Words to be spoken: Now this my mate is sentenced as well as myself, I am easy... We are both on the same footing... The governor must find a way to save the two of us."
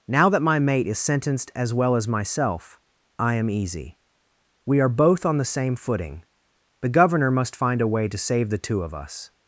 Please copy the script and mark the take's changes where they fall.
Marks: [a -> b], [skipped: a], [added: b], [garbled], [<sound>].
Now [this -> that] my mate is sentenced as well as myself, I am easy... We are both on the same footing... The governor must find a way to save the two of us."